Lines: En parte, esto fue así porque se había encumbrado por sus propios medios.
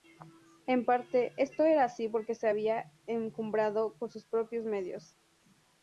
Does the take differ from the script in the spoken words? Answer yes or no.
yes